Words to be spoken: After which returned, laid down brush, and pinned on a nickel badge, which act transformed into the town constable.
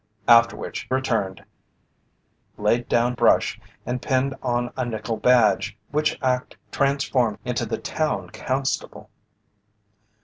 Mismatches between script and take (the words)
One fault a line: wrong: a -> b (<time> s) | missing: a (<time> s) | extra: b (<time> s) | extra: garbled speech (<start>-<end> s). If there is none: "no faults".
no faults